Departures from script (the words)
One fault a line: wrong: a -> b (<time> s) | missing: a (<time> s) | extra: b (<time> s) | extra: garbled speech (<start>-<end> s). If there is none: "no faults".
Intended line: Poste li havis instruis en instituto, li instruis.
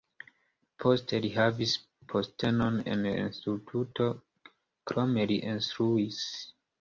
wrong: instruis -> postenon (2.1 s)
extra: krome (4.9 s)